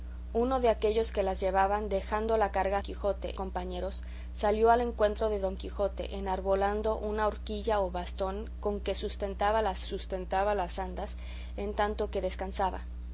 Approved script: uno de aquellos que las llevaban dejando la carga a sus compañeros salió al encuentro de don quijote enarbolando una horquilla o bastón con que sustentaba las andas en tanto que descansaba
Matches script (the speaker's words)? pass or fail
fail